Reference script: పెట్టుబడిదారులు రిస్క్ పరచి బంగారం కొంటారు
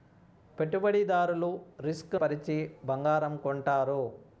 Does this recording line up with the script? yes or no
yes